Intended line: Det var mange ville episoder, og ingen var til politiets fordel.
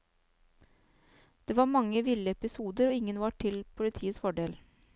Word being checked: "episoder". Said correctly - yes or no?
yes